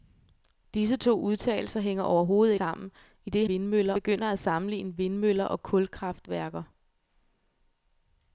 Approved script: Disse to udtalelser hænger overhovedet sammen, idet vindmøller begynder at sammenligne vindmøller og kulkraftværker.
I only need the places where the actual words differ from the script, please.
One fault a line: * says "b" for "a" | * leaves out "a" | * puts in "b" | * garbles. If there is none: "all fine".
all fine